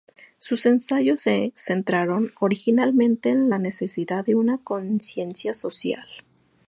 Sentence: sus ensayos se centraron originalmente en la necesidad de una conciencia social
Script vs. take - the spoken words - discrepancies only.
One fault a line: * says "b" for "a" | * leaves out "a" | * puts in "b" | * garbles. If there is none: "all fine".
all fine